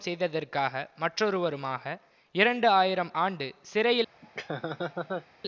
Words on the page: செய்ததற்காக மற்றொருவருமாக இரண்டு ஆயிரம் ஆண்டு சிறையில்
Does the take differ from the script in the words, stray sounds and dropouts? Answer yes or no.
yes